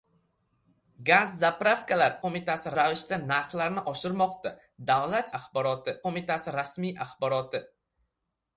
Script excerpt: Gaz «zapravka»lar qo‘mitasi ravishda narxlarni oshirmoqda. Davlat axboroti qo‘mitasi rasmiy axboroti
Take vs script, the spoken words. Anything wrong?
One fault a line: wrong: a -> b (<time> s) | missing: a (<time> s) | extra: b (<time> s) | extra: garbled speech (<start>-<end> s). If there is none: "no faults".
no faults